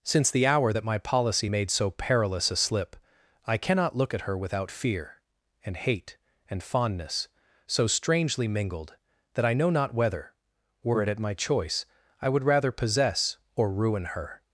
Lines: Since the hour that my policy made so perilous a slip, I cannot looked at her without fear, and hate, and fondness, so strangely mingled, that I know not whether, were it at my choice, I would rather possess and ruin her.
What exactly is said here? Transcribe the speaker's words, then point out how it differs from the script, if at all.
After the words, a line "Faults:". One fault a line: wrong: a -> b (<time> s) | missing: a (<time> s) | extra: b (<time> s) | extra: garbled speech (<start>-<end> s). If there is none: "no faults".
Since the hour that my policy made so perilous a slip, I cannot look at her without fear, and hate, and fondness, so strangely mingled, that I know not whether, were it at my choice, I would rather possess or ruin her.
Faults:
wrong: looked -> look (4.0 s)
wrong: and -> or (13.5 s)